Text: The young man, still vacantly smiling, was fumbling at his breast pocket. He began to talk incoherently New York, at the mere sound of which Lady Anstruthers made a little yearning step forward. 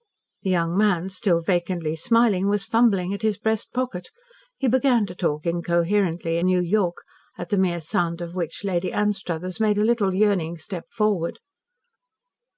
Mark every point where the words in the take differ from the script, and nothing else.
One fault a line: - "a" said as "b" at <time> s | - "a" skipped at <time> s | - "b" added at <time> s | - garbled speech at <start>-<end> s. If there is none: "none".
none